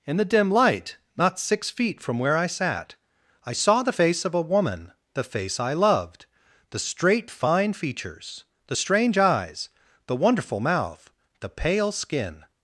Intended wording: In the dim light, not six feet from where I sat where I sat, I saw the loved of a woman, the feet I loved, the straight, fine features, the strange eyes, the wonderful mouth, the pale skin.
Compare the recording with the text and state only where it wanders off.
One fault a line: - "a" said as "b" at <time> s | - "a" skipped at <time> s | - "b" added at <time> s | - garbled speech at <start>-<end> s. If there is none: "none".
- "where" skipped at 3.0 s
- "sat I" skipped at 3.5 s
- "loved" said as "face" at 3.9 s
- "feet" said as "face" at 5.2 s